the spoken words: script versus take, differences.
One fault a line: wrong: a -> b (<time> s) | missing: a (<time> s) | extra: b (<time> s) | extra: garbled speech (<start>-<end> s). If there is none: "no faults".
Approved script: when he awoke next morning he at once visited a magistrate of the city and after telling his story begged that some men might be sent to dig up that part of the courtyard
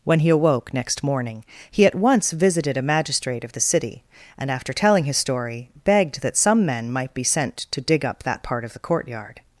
no faults